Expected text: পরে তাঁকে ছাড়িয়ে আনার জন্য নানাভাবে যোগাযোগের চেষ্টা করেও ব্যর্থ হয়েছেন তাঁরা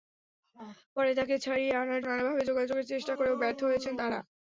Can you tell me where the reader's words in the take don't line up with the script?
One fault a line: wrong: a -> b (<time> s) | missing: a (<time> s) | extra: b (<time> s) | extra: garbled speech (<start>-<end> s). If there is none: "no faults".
missing: জন্য (2.0 s)